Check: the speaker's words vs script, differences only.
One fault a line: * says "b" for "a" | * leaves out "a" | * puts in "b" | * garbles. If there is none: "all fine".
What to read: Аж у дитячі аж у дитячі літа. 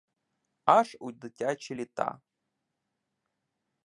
* leaves out "аж у дитячі"